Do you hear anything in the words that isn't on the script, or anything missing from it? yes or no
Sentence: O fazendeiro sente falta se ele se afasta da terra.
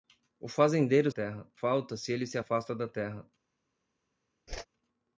yes